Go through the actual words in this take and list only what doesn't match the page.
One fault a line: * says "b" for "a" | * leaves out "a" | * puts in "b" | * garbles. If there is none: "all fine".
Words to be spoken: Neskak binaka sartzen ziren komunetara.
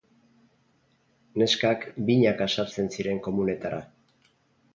all fine